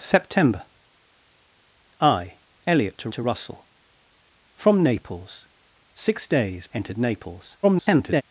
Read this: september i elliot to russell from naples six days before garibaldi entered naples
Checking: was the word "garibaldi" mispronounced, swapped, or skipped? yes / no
yes